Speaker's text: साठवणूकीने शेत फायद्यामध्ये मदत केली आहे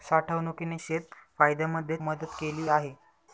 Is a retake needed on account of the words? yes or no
no